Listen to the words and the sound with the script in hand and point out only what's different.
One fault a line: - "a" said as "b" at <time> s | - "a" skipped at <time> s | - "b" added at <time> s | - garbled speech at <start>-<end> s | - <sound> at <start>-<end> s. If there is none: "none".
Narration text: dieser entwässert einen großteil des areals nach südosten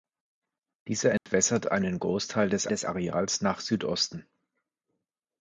- dropout at 1.2-1.3 s
- "des" added at 2.7 s